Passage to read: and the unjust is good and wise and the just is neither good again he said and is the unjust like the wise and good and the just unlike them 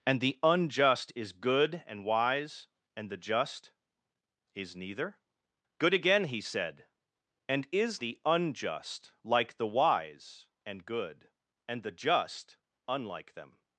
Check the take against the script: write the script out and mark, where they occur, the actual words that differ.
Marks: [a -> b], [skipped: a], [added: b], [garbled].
and the unjust is good and wise and the just is neither good again he said and is the unjust like the wise and good and the just unlike them